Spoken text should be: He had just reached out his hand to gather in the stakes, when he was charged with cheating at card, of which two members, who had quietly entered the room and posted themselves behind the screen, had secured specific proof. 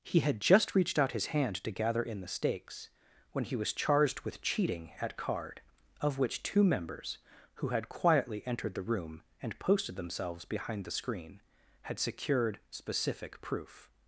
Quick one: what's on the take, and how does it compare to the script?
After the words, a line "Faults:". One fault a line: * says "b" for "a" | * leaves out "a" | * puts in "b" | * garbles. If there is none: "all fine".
He had just reached out his hand to gather in the stakes, when he was charged with cheating at card, of which two members, who had quietly entered the room and posted themselves behind the screen, had secured specific proof.
Faults:
all fine